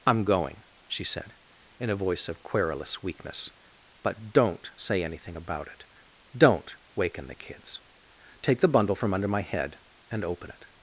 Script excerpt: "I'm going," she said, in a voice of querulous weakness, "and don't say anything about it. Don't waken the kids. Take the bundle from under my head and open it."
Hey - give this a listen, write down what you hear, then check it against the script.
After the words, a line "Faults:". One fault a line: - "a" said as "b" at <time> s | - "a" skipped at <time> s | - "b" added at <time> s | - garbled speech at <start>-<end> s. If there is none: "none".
"I'm going," she said, in a voice of querulous weakness, "but don't say anything about it. Don't waken the kids. Take the bundle from under my head and open it."
Faults:
- "and" said as "but" at 4.0 s